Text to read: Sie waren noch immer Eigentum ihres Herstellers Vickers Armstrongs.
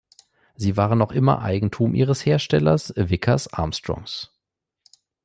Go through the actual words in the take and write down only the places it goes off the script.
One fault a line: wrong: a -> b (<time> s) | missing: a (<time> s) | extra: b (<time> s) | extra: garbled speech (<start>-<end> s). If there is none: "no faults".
no faults